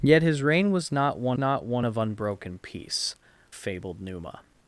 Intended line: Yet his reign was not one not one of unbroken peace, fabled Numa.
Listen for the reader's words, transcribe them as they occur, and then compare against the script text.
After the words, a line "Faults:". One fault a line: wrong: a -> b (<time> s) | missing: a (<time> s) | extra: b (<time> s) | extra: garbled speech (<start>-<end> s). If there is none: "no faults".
Yet his reign was not one not one of unbroken peace, fabled Numa.
Faults:
no faults